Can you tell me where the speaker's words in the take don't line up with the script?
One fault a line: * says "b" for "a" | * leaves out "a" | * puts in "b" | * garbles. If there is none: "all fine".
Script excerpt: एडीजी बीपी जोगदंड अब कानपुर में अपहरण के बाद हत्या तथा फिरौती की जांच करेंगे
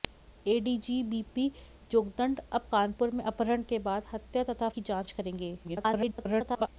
* leaves out "फिरौती"
* garbles